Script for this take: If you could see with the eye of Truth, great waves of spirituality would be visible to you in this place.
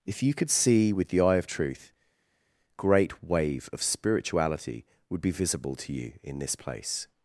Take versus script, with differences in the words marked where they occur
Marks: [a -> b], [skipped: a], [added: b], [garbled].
If you could see with the eye of Truth, great [waves -> wave] of spirituality would be visible to you in this place.